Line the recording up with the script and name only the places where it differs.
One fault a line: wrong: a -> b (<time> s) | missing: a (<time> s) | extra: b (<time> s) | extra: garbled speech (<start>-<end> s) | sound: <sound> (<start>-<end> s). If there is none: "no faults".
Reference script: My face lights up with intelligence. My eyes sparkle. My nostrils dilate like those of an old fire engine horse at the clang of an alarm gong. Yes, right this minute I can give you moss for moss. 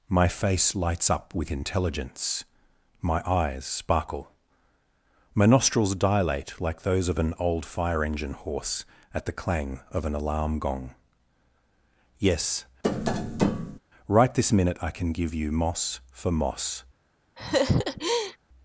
sound: tap (12.8-13.8 s)
sound: laugh (17.4-18.4 s)